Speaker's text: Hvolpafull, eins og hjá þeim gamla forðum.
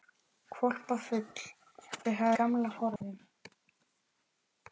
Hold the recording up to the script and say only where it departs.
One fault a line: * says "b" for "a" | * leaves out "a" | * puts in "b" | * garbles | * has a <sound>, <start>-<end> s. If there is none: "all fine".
* leaves out "eins"
* leaves out "þeim"
* has a dropout, 3.0-3.0 s